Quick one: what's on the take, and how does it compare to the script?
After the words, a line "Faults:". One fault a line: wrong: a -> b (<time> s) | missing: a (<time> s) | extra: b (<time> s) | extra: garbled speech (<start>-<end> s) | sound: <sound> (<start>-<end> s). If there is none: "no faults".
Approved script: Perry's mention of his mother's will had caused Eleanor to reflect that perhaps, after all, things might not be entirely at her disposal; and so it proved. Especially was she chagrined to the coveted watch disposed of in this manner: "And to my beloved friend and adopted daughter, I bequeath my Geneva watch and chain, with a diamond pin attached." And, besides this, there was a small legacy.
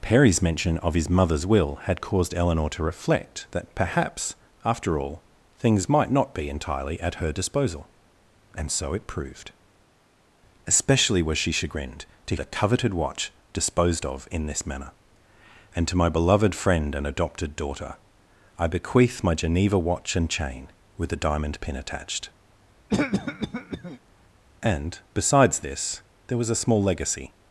Perry's mention of his mother's will had caused Eleanor to reflect that perhaps, after all, things might not be entirely at her disposal; and so it proved. Especially was she chagrined to the coveted watch disposed of in this manner: "And to my beloved friend and adopted daughter, I bequeath my Geneva watch and chain, with a diamond pin attached." And, besides this, there was a small legacy.
Faults:
sound: cough (22.9-24.0 s)